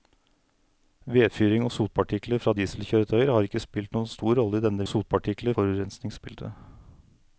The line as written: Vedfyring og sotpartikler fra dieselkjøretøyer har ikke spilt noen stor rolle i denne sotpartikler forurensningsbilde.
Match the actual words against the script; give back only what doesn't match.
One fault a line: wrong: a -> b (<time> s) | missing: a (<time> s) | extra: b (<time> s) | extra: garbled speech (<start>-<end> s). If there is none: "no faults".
no faults